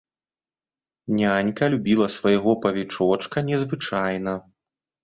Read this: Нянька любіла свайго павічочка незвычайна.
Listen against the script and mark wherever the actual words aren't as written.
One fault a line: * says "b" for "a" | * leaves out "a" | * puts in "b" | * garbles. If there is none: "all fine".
all fine